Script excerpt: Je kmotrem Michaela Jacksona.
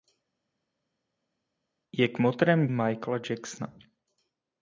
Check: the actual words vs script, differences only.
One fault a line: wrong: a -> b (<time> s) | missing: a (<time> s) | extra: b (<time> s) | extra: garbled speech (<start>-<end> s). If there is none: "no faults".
no faults